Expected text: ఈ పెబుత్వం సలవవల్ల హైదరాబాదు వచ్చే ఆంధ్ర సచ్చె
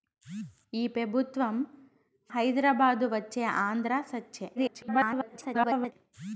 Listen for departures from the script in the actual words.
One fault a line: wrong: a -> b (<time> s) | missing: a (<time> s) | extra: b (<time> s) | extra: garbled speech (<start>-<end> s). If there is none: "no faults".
missing: సలవవల్ల (1.6 s)
extra: garbled speech (4.5-5.9 s)